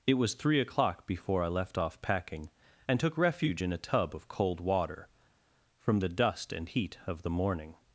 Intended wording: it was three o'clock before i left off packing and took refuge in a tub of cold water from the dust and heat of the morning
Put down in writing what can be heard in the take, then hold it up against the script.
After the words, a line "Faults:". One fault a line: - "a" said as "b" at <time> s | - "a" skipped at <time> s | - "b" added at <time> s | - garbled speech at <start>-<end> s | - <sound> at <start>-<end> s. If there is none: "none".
it was three o'clock before i left off packing and took refuge in a tub of cold water from the dust and heat of the morning
Faults:
none